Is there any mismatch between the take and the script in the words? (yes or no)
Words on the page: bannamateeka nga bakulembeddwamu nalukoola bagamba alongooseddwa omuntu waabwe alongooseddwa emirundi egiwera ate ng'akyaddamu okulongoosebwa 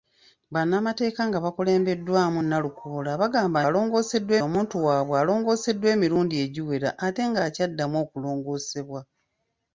no